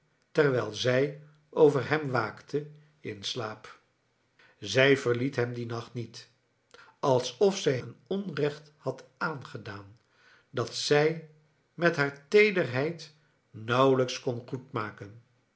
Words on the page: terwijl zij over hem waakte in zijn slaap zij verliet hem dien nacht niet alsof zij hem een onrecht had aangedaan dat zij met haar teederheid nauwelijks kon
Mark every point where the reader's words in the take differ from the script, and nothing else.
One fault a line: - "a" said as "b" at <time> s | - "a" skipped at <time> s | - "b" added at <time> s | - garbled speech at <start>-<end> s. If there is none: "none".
- "zijn" skipped at 3.2 s
- "hem" skipped at 7.8 s